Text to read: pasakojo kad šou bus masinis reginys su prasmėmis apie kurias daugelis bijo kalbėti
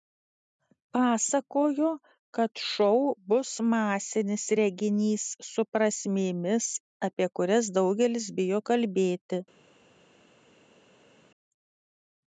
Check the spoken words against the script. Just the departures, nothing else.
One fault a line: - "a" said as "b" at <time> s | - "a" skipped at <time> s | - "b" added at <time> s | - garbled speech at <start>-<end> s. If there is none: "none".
none